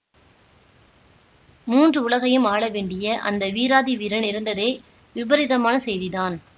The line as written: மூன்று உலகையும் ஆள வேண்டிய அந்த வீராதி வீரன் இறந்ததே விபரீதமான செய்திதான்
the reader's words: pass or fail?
pass